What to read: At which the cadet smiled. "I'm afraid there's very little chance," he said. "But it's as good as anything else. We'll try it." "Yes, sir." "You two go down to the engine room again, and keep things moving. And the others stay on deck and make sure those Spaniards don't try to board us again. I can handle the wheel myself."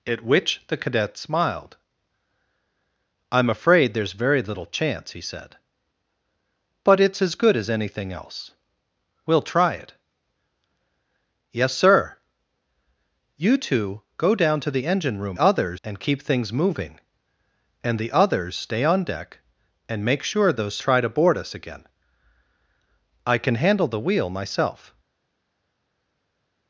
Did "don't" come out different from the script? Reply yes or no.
yes